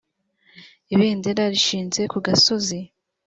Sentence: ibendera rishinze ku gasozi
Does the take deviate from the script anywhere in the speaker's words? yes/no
no